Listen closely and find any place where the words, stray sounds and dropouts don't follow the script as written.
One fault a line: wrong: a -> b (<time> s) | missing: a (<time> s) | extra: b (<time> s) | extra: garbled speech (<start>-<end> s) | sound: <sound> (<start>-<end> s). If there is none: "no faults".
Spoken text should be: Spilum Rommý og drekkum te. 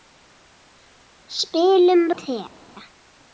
missing: Rommý og drekkum (2.0 s)